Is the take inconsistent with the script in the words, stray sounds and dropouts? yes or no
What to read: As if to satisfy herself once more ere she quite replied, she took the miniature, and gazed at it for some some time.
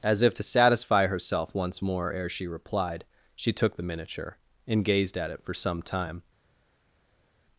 yes